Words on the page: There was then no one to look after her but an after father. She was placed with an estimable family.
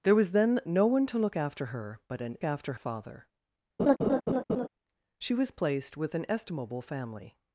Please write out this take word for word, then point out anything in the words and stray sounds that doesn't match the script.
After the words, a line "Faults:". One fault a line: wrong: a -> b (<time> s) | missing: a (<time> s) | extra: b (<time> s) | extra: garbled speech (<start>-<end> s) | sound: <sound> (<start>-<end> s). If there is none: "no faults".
There was then no one to look after her but an after father. She was placed with an estimable family.
Faults:
sound: laugh (3.8-4.7 s)